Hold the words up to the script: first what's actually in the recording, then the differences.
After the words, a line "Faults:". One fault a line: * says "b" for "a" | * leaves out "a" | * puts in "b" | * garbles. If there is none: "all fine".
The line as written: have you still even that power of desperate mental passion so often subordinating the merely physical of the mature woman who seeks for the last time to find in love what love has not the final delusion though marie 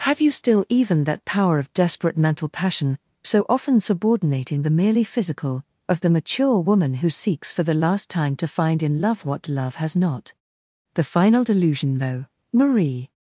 have you still even that power of desperate mental passion so often subordinating the merely physical of the mature woman who seeks for the last time to find in love what love has not the final delusion though marie
Faults:
all fine